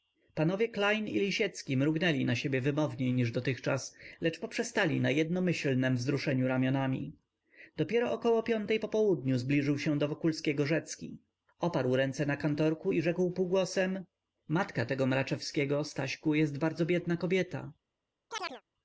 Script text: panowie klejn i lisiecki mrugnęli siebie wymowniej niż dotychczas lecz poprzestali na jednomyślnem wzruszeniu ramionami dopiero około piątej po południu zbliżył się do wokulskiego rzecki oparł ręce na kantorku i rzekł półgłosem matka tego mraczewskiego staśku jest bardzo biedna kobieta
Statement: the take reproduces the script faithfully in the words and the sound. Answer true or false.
false